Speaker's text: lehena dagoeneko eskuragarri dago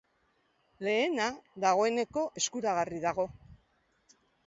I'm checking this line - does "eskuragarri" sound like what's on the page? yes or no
yes